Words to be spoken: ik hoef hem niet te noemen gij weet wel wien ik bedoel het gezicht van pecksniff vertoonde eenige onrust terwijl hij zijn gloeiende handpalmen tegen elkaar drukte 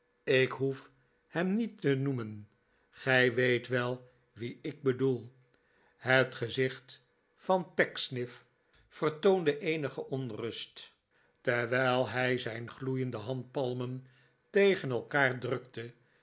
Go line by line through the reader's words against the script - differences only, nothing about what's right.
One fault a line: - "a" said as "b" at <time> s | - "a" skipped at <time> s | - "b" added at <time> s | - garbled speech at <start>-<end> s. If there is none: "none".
none